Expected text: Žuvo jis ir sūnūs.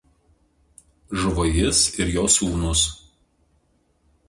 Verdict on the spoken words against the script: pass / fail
fail